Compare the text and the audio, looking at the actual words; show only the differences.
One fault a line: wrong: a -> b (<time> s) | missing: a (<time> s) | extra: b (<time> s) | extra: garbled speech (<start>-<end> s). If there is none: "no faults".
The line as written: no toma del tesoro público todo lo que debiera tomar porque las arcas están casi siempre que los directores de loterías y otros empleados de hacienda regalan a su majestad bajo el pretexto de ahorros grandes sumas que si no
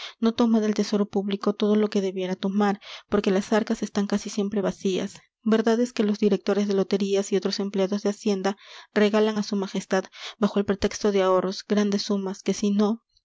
extra: vacías verdad es (4.6 s)